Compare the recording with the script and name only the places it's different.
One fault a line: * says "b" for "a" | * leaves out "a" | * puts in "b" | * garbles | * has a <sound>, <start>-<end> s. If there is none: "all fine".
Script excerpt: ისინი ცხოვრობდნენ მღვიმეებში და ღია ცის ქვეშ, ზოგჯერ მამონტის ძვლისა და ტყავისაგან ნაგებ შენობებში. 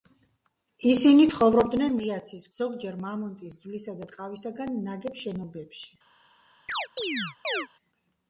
* leaves out "მღვიმეებში და"
* leaves out "ქვეშ"
* has a chirp, 6.7-7.7 s